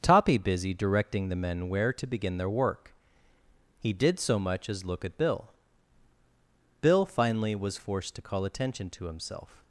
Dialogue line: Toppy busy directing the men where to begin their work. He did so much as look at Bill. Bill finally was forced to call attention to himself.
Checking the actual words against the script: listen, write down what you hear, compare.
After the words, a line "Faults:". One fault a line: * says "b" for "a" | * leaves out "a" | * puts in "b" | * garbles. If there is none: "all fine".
Toppy busy directing the men where to begin their work. He did so much as look at Bill. Bill finally was forced to call attention to himself.
Faults:
all fine